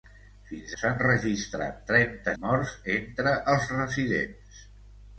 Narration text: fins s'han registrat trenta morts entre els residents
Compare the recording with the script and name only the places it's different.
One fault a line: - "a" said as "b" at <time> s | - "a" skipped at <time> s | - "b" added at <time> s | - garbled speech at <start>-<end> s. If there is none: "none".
none